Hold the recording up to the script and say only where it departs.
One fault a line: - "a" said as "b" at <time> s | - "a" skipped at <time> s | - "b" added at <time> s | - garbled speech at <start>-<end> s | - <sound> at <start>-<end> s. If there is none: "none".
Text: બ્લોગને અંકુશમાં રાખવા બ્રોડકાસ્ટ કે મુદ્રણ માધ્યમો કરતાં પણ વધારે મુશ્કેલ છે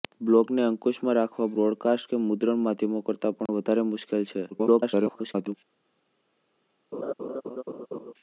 - dropout at 3.5-3.5 s
- garbled speech at 4.5-5.5 s
- laugh at 6.9-8.1 s